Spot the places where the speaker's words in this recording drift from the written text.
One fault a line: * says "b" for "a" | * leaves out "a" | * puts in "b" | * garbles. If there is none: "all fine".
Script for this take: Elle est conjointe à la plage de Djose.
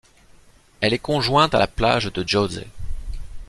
all fine